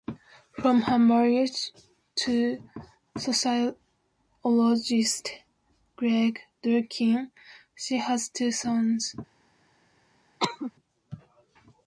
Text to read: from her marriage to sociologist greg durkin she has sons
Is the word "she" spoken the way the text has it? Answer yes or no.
yes